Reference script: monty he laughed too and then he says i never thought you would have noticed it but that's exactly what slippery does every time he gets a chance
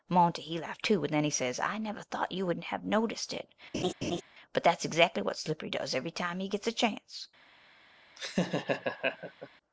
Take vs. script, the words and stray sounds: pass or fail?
fail